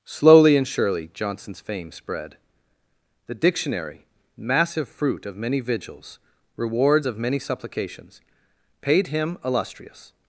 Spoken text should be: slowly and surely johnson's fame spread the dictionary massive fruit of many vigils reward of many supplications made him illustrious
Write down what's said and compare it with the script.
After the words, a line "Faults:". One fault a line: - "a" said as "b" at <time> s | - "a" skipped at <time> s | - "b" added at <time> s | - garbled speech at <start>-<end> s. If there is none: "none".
slowly and surely johnson's fame spread the dictionary massive fruit of many vigils rewards of many supplications paid him illustrious
Faults:
- "reward" said as "rewards" at 6.6 s
- "made" said as "paid" at 8.8 s